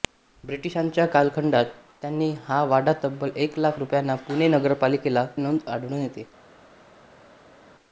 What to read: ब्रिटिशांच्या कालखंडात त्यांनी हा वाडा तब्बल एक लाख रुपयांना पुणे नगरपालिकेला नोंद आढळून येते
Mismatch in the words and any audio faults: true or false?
false